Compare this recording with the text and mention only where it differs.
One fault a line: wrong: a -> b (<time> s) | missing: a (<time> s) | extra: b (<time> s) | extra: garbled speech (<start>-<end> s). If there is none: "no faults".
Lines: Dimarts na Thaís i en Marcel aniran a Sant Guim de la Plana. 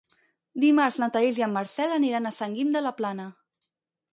no faults